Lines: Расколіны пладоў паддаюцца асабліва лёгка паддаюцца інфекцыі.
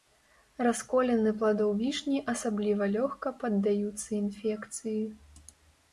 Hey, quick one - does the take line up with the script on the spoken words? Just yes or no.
no